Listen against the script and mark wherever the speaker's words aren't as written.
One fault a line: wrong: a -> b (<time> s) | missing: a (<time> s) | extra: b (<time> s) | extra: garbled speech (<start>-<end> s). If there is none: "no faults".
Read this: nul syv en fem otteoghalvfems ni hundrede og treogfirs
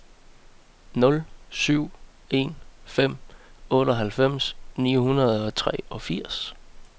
no faults